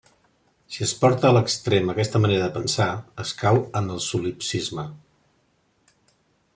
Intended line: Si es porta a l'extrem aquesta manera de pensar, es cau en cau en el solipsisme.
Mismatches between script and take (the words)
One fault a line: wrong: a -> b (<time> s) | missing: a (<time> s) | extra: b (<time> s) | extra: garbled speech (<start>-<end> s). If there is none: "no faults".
missing: cau en (3.9 s)